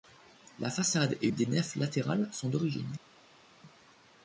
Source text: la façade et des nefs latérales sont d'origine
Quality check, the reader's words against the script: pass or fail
pass